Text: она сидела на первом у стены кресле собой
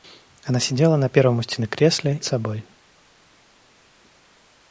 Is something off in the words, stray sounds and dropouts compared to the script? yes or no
no